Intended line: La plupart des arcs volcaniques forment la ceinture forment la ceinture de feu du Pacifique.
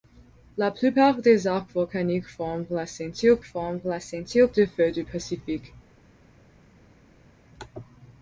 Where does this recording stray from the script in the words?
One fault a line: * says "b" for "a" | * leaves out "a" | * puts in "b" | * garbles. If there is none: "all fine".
all fine